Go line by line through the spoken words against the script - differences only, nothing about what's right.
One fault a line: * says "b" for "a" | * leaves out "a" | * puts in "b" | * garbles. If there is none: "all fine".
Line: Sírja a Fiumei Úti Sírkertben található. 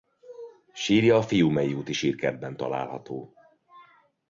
all fine